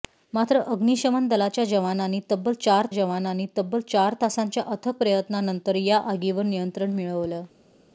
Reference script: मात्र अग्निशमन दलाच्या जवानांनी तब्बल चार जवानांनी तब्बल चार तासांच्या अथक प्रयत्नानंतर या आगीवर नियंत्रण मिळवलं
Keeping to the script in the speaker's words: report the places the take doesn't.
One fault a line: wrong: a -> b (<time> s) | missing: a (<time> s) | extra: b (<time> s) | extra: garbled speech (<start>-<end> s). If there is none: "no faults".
no faults